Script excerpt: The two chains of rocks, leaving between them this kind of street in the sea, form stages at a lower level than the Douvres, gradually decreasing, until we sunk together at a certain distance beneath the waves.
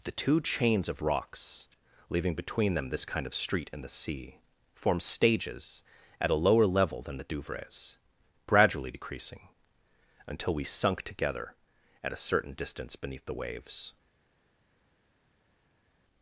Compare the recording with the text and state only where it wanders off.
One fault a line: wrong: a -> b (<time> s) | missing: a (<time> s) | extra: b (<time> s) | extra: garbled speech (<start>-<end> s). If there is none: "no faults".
no faults